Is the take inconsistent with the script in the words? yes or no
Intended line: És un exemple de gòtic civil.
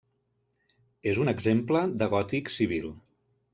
no